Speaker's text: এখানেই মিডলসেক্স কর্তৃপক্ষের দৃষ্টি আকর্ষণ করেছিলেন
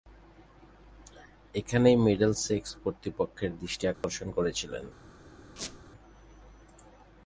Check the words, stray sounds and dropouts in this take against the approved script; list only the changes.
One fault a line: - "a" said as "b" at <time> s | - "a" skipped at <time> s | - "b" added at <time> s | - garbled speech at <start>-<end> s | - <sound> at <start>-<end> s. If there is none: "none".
- dropout at 3.9-4.0 s
- squeak at 5.6-5.8 s